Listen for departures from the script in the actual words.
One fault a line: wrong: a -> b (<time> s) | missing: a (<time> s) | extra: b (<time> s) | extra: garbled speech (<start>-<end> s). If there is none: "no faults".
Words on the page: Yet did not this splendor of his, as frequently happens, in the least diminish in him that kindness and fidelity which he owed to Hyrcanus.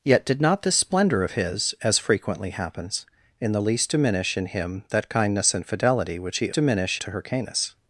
wrong: owed -> diminish (6.5 s)